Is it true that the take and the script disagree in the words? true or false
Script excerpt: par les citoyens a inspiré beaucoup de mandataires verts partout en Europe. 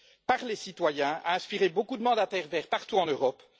false